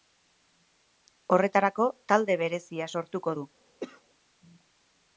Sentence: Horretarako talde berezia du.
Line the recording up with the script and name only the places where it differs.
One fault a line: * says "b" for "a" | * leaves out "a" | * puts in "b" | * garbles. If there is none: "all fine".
* puts in "sortuko"